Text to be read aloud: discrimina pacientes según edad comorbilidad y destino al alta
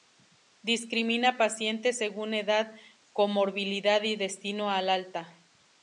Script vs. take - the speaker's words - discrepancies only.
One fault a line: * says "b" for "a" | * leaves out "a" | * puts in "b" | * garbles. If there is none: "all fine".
all fine